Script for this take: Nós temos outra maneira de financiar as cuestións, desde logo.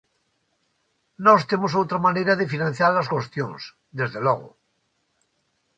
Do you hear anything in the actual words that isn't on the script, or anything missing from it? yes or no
no